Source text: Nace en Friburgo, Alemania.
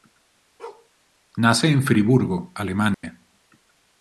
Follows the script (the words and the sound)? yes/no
no